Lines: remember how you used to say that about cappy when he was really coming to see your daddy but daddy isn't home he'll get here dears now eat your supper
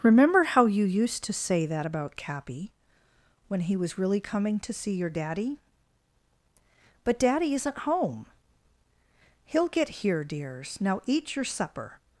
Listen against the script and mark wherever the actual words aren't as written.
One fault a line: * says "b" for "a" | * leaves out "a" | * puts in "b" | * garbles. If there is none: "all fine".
all fine